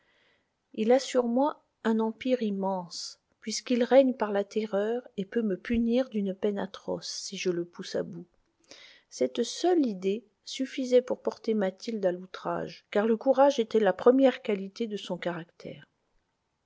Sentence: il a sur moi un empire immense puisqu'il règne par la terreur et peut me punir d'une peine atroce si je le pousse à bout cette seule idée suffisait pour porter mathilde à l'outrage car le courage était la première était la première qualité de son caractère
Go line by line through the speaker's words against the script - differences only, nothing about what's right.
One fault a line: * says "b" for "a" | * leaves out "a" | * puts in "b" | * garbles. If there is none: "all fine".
* leaves out "était la première"